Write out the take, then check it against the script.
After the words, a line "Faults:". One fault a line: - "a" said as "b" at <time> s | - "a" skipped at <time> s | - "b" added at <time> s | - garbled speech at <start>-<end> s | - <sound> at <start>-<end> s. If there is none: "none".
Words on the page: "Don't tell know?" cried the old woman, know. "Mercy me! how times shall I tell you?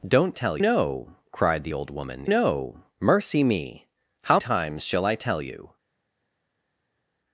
"Don't tell know?" cried the old woman, know. "Mercy me! how times shall I tell you?
Faults:
none